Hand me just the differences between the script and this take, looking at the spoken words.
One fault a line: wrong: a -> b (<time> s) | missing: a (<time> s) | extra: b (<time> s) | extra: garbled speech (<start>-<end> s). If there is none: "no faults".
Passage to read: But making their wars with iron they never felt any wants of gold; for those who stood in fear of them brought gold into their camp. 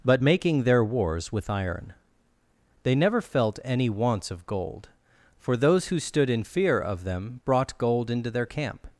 no faults